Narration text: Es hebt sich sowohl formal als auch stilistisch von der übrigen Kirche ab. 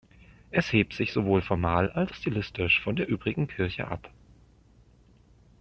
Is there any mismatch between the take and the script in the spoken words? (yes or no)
yes